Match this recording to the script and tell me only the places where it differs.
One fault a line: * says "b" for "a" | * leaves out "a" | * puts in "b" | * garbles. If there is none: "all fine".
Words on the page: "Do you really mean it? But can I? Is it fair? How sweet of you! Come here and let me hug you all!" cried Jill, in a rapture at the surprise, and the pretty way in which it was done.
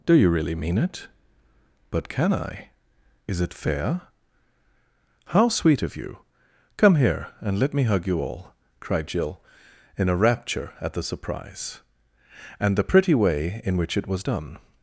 all fine